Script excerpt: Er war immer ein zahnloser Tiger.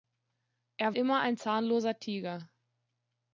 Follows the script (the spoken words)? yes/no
no